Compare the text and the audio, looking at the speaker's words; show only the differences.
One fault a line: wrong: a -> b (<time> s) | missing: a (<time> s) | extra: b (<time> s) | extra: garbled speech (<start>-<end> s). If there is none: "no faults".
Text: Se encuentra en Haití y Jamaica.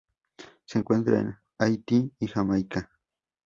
no faults